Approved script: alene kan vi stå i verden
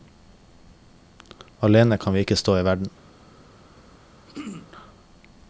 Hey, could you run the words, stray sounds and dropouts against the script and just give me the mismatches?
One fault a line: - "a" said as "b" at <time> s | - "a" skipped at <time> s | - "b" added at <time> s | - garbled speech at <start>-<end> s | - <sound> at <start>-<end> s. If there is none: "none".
- "ikke" added at 2.2 s
- throat clearing at 4.3-4.7 s